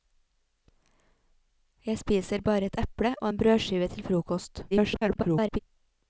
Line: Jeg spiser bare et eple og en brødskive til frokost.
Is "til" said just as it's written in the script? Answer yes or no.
yes